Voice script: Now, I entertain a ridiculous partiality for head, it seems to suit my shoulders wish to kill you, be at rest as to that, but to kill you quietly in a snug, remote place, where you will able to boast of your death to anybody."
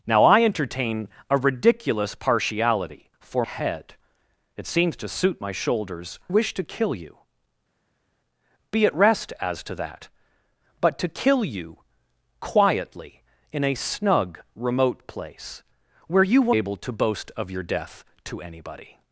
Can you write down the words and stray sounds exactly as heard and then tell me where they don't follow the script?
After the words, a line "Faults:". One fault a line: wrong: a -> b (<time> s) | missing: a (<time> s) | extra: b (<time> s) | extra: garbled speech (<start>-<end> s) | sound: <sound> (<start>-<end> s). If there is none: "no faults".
Now, I entertain a ridiculous partiality for head, it seems to suit my shoulders wish to kill you, be at rest as to that, but to kill you quietly in a snug, remote place, where you will able to boast of your death to anybody."
Faults:
no faults